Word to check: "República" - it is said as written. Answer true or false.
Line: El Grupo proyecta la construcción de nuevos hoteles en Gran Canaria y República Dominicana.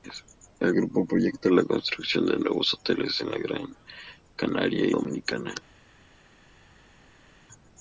false